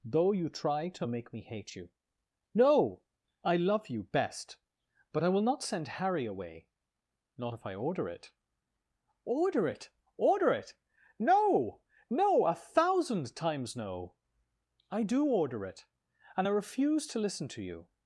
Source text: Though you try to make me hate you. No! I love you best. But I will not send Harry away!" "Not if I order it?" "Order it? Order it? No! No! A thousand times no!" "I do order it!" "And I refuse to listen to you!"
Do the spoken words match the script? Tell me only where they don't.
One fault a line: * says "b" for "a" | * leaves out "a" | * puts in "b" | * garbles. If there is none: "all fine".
all fine